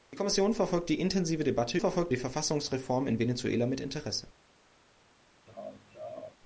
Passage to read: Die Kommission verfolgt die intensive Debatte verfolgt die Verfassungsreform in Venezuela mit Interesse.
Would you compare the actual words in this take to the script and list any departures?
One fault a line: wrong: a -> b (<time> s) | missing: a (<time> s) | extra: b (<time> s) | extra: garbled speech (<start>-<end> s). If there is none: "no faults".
no faults